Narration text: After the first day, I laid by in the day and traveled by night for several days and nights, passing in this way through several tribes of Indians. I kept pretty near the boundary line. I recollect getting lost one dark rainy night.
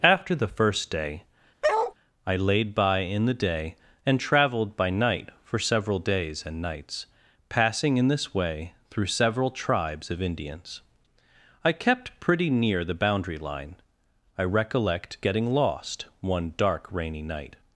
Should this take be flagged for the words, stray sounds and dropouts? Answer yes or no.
yes